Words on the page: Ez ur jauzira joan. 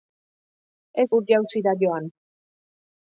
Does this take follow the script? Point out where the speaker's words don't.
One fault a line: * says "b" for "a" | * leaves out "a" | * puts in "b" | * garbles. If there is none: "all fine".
all fine